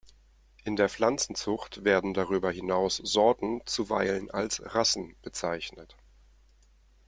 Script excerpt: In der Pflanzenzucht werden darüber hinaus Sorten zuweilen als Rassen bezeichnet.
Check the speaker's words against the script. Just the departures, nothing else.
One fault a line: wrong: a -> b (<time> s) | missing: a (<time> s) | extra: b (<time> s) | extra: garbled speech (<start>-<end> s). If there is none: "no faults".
no faults